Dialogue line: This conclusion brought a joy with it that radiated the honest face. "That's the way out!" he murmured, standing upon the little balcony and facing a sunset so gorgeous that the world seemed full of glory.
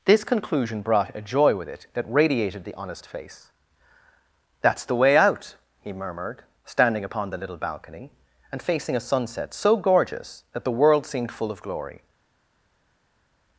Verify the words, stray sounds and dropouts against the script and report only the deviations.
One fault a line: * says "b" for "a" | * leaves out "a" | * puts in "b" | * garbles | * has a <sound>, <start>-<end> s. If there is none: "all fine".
all fine